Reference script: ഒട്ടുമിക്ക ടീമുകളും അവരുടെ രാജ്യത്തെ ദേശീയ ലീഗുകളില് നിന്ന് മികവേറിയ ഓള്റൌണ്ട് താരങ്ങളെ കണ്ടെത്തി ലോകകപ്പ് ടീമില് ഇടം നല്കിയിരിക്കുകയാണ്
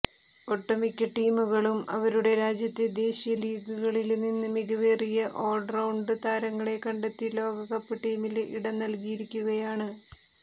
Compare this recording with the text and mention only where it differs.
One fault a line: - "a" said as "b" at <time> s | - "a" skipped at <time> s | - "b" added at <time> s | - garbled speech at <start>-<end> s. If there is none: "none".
none